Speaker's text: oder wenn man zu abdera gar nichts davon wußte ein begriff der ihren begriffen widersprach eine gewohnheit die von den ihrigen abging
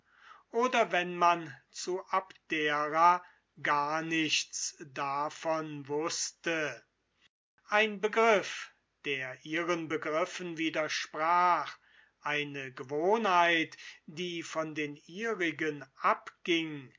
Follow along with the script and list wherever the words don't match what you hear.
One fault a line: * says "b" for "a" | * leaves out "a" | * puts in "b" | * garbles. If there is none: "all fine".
all fine